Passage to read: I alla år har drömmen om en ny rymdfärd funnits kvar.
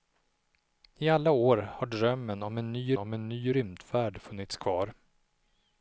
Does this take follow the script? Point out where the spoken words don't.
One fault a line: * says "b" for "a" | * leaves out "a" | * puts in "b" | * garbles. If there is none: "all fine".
* puts in "om en ny"